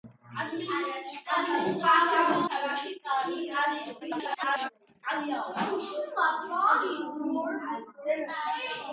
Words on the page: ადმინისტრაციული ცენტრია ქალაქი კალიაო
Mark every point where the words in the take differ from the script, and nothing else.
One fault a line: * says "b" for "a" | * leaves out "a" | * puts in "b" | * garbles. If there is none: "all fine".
* leaves out "ცენტრია"
* garbles